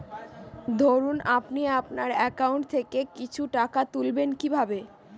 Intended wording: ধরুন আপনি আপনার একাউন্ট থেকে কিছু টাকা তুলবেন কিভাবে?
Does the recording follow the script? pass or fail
pass